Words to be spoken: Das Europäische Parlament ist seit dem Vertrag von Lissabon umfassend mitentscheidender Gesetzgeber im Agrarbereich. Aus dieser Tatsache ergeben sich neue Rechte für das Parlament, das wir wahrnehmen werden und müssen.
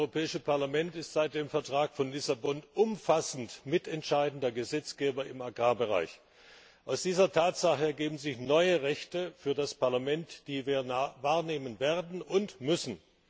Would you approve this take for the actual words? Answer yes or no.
no